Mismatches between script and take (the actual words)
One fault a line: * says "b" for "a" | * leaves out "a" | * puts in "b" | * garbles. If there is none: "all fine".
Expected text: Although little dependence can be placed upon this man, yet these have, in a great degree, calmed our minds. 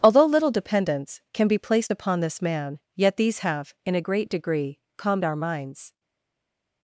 all fine